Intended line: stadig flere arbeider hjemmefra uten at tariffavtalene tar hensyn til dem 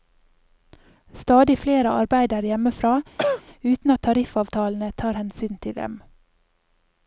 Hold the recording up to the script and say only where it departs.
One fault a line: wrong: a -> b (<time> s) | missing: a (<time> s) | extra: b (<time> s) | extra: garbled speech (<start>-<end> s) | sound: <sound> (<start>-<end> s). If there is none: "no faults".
sound: cough (3.2-3.4 s)